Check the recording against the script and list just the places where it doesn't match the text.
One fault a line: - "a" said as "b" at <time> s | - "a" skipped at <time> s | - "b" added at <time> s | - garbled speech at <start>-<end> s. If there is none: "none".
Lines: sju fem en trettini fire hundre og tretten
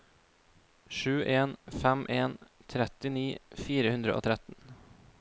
- "en" added at 1.2 s